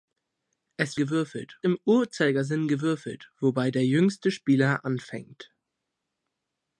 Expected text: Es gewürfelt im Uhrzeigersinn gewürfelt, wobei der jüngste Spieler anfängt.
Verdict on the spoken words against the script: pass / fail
pass